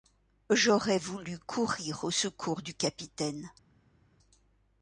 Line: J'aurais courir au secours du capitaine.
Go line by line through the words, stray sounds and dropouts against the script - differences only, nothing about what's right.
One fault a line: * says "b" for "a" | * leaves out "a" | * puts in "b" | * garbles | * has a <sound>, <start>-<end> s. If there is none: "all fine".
* puts in "voulu"